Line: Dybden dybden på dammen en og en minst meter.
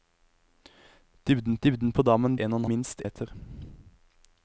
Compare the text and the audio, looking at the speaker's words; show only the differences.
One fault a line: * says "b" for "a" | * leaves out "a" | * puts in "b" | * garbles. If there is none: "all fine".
all fine